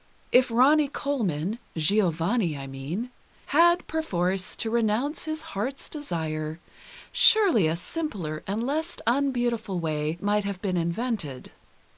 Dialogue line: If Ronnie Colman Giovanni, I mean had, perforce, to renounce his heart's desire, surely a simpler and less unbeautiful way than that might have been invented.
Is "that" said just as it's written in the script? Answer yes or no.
no